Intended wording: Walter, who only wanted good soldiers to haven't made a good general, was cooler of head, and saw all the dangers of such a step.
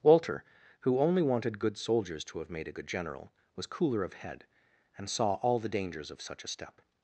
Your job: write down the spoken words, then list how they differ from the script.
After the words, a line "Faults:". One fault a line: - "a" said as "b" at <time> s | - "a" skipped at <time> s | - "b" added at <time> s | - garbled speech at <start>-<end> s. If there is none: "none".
Walter, who only wanted good soldiers to have made a good general, was cooler of head, and saw all the dangers of such a step.
Faults:
- "haven't" said as "have" at 2.4 s